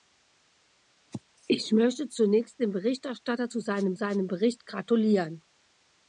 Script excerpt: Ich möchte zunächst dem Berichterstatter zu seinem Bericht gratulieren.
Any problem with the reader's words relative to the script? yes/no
yes